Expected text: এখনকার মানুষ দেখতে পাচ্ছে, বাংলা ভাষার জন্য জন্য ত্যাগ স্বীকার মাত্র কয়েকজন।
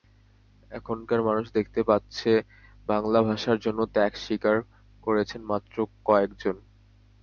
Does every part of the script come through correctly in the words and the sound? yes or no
no